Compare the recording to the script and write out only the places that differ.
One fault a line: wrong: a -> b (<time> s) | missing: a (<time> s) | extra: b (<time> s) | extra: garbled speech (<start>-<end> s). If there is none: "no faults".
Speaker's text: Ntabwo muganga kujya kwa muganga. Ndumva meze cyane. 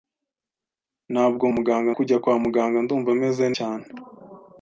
no faults